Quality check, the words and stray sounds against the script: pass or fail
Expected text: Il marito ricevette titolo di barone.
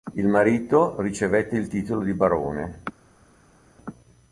fail